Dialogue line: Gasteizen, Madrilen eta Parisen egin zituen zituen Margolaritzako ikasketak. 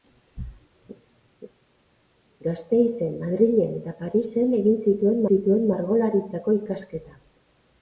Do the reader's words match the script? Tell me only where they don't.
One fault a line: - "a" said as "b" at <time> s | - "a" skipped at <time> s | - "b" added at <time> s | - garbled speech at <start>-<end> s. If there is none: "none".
none